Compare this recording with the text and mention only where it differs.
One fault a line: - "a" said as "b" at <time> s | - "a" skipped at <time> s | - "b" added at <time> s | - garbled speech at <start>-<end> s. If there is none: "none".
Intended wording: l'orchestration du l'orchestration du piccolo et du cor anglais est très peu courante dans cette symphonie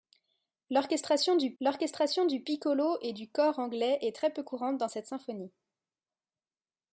none